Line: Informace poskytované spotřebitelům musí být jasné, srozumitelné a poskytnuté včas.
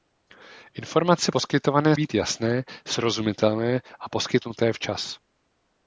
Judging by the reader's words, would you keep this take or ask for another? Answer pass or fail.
fail